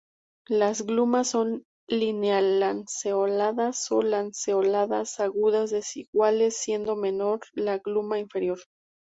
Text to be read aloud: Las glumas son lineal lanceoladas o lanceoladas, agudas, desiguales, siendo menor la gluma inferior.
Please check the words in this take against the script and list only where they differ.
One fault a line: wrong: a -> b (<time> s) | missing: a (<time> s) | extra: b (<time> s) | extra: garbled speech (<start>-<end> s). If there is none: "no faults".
no faults